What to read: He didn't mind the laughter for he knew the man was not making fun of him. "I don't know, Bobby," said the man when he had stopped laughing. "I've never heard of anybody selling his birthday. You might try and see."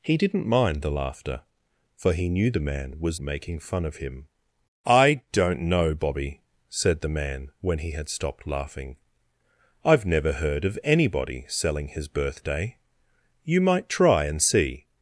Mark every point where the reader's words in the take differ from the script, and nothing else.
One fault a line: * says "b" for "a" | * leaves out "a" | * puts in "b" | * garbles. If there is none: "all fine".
* leaves out "not"